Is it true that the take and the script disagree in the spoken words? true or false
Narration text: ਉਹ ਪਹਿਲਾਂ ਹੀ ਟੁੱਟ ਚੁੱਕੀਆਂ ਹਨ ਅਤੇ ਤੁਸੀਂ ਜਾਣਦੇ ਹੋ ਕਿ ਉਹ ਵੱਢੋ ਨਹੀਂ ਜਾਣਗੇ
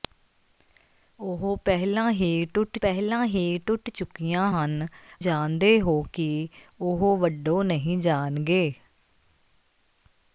true